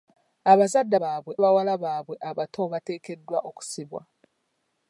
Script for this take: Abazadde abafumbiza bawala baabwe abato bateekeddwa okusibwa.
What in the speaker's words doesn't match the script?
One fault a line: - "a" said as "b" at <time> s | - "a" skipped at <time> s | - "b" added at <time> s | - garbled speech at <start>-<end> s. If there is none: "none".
- "abafumbiza" said as "baabwe" at 1.0 s